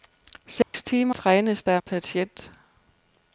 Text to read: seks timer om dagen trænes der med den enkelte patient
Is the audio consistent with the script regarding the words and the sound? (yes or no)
no